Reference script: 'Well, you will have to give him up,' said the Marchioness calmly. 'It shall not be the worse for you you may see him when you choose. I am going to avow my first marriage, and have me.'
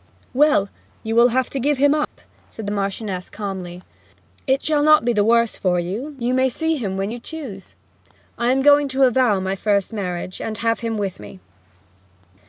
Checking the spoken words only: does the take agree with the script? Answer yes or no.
no